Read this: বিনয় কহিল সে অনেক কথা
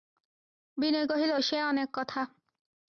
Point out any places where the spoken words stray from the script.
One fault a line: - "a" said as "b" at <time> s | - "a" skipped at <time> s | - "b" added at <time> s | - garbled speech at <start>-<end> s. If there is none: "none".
none